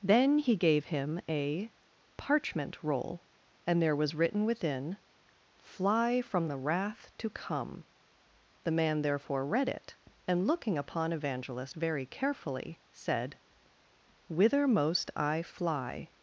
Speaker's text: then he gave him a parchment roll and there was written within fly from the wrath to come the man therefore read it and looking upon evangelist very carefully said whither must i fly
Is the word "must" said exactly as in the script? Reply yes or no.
no